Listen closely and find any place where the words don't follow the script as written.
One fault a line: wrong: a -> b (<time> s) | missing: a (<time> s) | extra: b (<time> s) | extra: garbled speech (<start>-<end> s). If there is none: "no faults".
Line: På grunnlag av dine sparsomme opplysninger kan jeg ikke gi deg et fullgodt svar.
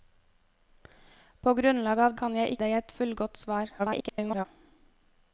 missing: dine sparsomme opplysninger (2.1 s)
missing: ikke gi (2.6 s)
extra: garbled speech (3.8-4.5 s)